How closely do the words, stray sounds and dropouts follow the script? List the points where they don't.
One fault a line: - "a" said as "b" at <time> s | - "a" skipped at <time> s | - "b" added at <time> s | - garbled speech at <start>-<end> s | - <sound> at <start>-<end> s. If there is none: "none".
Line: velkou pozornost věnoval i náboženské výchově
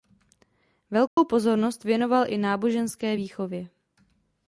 - dropout at 1.1-1.2 s